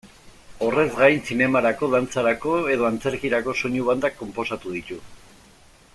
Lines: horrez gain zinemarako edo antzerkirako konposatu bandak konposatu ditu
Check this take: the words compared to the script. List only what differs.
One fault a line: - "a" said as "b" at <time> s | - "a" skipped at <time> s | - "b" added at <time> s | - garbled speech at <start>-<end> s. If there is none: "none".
- "dantzarako" added at 1.9 s
- "konposatu" said as "soinu" at 3.6 s